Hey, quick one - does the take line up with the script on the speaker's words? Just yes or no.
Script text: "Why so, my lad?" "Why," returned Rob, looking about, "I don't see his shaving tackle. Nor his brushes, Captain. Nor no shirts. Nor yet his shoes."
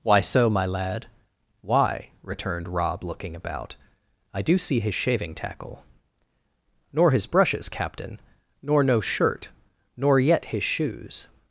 no